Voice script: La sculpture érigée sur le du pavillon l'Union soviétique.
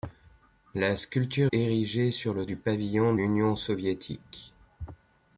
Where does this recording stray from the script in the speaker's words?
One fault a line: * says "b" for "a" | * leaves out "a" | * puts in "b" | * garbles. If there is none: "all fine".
all fine